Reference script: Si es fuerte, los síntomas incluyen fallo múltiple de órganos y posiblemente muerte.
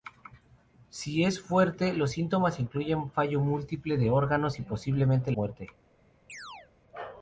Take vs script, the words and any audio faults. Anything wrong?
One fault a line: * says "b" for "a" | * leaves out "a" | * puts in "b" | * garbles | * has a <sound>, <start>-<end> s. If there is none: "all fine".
* has a chirp, 6.3-6.7 s